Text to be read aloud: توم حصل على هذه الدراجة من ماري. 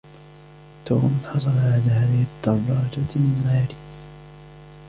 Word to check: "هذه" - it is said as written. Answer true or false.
true